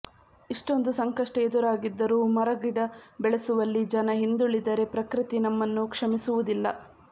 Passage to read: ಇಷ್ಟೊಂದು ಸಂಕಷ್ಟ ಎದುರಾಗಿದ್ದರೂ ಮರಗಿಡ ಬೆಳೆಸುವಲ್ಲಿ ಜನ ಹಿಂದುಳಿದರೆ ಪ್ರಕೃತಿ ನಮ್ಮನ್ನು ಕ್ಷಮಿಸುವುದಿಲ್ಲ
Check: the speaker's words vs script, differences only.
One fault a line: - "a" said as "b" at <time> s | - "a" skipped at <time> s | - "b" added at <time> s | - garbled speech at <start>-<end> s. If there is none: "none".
none